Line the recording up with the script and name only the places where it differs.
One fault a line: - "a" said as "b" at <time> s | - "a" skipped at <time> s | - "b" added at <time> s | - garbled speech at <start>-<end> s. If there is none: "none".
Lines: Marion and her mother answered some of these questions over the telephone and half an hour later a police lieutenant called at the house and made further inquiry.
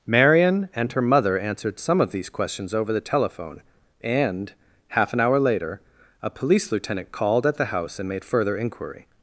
none